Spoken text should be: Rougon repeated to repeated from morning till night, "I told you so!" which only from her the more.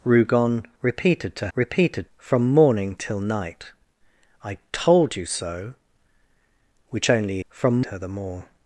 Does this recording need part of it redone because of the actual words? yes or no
no